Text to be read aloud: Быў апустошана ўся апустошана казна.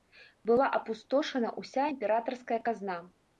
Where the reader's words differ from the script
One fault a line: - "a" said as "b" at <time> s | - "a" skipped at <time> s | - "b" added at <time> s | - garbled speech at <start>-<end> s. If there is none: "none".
- "Быў" said as "Была" at 0.5 s
- "апустошана" said as "імператарская" at 1.9 s